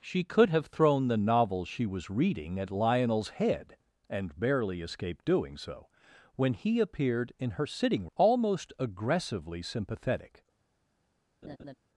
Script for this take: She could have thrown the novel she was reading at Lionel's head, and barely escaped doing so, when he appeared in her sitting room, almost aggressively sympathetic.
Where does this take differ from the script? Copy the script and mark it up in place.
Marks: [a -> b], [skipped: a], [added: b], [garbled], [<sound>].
She could have thrown the novel she was reading at Lionel's head, and barely escaped doing so, when he appeared in her sitting [skipped: room,] almost aggressively sympathetic. [laugh]